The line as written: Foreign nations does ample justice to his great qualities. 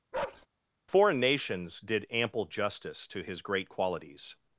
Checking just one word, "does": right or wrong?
wrong